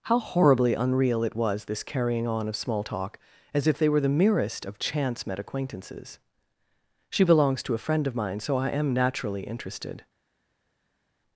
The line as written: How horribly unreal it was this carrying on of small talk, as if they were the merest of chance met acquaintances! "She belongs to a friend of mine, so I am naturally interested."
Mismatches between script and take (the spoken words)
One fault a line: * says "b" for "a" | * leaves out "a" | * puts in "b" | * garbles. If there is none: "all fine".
all fine